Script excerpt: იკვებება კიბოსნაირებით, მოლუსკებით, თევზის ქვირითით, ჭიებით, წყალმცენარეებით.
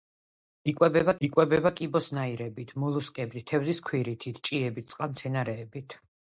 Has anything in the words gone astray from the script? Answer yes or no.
yes